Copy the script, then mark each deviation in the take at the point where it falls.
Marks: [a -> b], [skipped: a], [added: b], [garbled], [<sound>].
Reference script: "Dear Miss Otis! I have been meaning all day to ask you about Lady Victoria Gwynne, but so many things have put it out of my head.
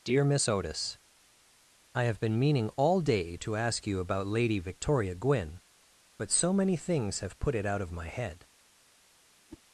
"Dear Miss Otis! I have been meaning all day to ask you about Lady Victoria Gwynne, but so many things have put it out of my head. [whoosh]